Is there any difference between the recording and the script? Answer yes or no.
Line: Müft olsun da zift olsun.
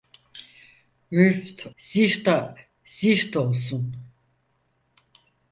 yes